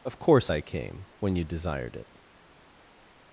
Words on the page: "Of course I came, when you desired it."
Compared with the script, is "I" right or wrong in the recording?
right